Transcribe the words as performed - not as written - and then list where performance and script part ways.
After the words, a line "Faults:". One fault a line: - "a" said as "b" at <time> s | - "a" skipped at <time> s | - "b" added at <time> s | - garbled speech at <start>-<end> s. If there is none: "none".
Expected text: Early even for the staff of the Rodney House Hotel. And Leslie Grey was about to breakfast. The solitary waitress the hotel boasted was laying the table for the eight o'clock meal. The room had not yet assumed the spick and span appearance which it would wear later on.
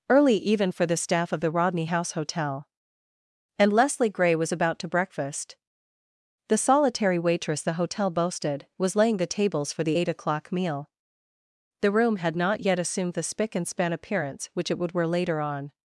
Early even for the staff of the Rodney House Hotel. And Leslie Grey was about to breakfast. The solitary waitress the hotel boasted was laying the tables for the eight o'clock meal. The room had not yet assumed the spick and span appearance which it would wear later on.
Faults:
- "table" said as "tables" at 9.3 s